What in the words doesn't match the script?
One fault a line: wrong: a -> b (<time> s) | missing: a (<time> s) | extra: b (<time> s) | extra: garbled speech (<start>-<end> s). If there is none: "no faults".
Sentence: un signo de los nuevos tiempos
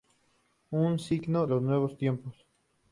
missing: de (1.5 s)